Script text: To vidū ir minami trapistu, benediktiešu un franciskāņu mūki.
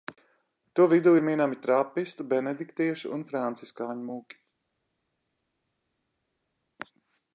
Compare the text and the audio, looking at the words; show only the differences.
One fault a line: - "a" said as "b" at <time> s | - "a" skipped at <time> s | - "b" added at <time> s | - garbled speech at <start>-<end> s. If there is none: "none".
none